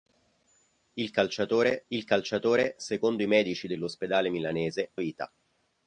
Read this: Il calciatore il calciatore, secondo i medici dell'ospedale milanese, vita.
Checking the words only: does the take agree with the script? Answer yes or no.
yes